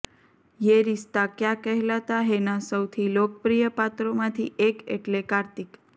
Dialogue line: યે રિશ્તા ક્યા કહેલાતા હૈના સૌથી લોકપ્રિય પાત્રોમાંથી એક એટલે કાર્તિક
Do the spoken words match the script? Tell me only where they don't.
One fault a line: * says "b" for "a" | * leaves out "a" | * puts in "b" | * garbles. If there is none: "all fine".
all fine